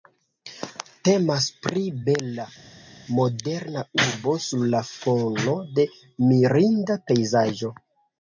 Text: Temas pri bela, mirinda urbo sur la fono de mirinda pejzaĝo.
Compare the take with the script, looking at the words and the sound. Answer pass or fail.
fail